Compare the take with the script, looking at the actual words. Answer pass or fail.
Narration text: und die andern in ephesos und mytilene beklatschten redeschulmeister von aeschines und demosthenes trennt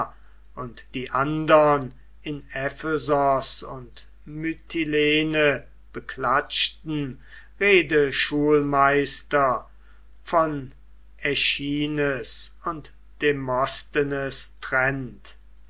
pass